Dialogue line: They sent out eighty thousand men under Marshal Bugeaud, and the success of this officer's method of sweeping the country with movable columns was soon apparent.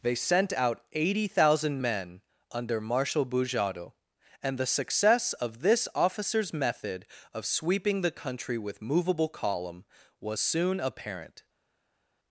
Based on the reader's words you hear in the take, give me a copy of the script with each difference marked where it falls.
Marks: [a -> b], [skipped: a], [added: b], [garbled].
They sent out eighty thousand men under Marshal Bugeaud, and the success of this officer's method of sweeping the country with movable [columns -> column] was soon apparent.